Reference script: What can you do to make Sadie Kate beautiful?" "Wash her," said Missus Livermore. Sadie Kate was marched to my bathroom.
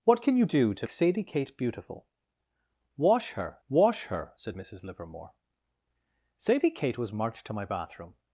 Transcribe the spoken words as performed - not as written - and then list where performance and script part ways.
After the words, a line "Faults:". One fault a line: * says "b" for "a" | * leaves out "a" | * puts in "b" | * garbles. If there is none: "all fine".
What can you do to Sadie Kate beautiful?" "Wash her wash her," said Missus Livermore. Sadie Kate was marched to my bathroom.
Faults:
* leaves out "make"
* puts in "wash her"